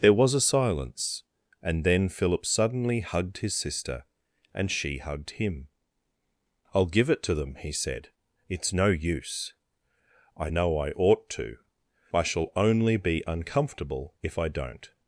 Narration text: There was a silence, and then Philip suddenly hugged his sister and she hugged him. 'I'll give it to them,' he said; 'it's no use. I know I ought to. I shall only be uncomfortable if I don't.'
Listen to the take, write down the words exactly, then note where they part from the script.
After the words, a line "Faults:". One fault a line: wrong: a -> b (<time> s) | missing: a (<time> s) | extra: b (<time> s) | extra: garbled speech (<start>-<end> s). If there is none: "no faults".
There was a silence, and then Philip suddenly hugged his sister and she hugged him. 'I'll give it to them,' he said; 'it's no use. I know I ought to. I shall only be uncomfortable if I don't.'
Faults:
no faults